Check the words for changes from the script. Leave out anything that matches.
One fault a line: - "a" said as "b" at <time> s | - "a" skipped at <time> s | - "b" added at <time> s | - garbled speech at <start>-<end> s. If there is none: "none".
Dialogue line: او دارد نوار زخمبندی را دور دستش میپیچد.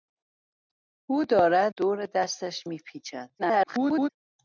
- "نوار زخمبندی را" skipped at 1.7 s
- garbled speech at 3.4-4.1 s